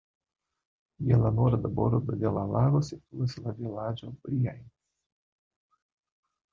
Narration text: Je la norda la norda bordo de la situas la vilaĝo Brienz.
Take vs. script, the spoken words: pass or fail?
fail